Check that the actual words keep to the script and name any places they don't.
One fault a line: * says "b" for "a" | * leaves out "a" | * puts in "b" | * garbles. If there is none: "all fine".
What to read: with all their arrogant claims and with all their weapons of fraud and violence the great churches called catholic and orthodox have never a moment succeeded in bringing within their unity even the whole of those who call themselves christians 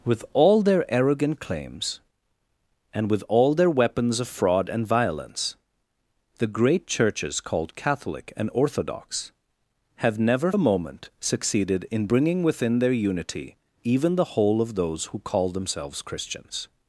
all fine